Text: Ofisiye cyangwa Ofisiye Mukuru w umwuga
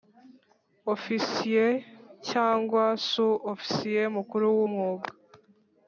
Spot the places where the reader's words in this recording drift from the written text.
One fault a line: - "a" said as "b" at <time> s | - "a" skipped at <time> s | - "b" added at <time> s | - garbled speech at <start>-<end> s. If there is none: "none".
- "Su" added at 3.1 s